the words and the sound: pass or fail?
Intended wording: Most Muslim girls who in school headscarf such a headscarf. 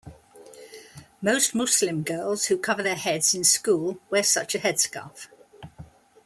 fail